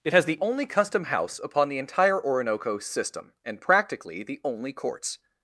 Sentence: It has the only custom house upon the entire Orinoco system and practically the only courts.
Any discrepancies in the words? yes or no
no